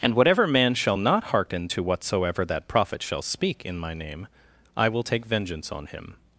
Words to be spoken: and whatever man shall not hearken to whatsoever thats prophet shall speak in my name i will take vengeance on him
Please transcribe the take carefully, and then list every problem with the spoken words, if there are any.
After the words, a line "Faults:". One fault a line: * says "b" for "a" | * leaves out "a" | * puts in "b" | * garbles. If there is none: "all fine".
and whatever man shall not hearken to whatsoever that prophet shall speak in my name i will take vengeance on him
Faults:
* says "that" for "thats"